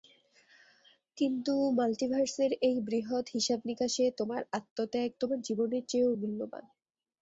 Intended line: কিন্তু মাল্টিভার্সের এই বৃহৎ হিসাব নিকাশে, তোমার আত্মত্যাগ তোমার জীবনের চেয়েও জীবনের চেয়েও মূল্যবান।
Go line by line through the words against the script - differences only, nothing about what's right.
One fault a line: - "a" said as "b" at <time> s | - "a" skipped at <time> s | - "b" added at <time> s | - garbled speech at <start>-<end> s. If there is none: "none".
- "জীবনের চেয়েও" skipped at 6.1 s